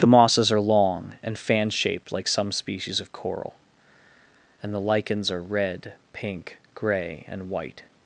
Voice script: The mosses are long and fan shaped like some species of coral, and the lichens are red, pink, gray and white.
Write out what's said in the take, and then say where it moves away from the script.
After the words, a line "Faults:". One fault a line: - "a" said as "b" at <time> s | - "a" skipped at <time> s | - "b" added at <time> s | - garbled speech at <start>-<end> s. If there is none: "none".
The mosses are long and fan shaped like some species of coral, and the lichens are red, pink, gray and white.
Faults:
none